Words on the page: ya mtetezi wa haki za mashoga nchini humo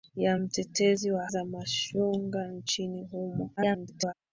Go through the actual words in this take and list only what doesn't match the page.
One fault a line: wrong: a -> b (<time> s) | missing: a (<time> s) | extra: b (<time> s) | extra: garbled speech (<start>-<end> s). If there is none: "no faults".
missing: haki (1.3 s)
extra: garbled speech (3.6-4.1 s)